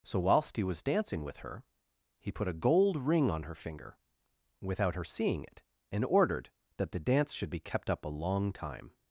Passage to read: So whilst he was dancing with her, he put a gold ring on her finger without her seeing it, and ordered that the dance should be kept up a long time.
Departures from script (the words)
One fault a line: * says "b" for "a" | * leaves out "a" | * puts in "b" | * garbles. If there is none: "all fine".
all fine